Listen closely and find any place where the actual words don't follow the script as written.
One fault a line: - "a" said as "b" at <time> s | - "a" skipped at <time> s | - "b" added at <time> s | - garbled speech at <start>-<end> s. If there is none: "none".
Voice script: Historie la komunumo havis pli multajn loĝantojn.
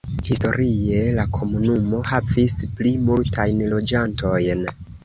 none